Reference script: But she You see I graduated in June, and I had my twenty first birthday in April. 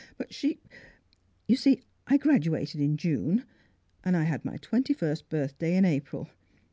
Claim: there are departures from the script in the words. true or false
false